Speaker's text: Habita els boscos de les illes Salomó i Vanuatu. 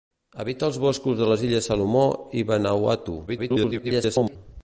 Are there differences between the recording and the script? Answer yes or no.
yes